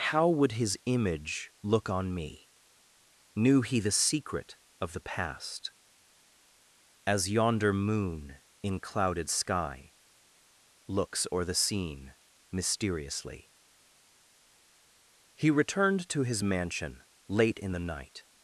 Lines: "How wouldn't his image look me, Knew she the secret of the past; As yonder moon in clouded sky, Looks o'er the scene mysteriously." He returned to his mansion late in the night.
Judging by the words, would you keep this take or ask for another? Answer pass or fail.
fail